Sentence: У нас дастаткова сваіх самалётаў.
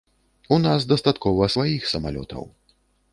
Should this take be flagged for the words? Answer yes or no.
no